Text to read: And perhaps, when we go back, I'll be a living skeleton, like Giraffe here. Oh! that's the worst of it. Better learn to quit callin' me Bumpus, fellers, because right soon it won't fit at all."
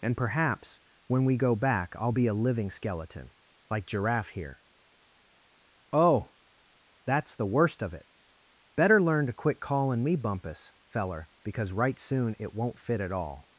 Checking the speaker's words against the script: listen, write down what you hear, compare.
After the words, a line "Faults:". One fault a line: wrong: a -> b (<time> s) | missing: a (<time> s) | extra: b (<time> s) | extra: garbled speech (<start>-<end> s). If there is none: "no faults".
And perhaps, when we go back, I'll be a living skeleton, like Giraffe here. Oh! that's the worst of it. Better learn to quit callin' me Bumpus, feller, because right soon it won't fit at all."
Faults:
wrong: fellers -> feller (10.9 s)